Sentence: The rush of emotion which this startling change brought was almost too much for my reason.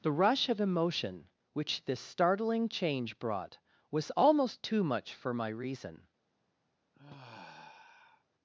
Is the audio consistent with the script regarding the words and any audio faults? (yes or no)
no